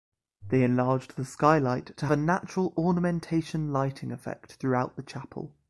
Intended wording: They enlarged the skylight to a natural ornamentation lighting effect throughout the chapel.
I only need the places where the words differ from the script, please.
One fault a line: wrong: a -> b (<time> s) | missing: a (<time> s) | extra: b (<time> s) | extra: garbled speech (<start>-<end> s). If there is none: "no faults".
no faults